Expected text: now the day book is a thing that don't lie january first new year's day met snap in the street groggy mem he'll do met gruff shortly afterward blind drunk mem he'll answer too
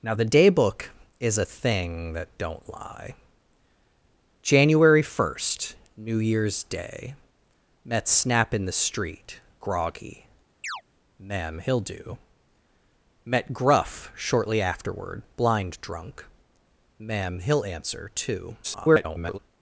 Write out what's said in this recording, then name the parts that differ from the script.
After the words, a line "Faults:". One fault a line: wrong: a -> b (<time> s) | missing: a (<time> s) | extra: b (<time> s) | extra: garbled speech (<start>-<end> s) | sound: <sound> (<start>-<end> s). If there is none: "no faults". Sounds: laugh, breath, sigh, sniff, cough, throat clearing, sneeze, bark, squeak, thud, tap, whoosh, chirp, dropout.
now the day book is a thing that don't lie january first new year's day met snap in the street groggy mem he'll do met gruff shortly afterward blind drunk mem he'll answer too [garbled]
Faults:
sound: chirp (10.6-10.8 s)
extra: garbled speech (18.6-19.4 s)